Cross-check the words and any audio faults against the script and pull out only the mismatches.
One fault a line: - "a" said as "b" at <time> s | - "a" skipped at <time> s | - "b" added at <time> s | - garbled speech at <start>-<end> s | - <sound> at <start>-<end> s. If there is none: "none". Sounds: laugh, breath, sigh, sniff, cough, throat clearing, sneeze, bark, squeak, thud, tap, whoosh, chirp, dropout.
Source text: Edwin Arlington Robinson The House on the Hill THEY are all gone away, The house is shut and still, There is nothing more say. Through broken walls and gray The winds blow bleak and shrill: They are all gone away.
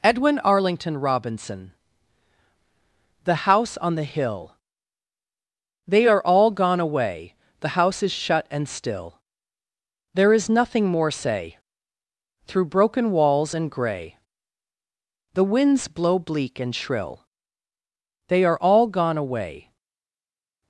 none